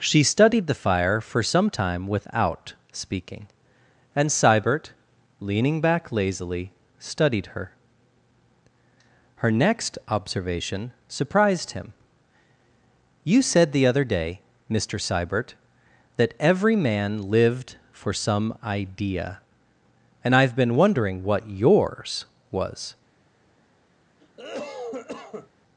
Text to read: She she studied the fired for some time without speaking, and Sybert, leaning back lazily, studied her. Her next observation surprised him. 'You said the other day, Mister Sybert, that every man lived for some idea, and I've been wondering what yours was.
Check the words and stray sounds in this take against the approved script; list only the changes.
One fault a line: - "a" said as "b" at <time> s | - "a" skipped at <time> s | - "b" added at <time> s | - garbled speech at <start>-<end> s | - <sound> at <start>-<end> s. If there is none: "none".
- "she" skipped at 0.2 s
- "fired" said as "fire" at 0.7 s
- cough at 24.2-25.5 s